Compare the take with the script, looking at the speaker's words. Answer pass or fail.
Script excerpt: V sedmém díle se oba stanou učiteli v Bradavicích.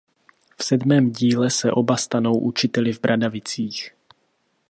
pass